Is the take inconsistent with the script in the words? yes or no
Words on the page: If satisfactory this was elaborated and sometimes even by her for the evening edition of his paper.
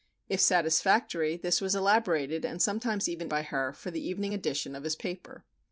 no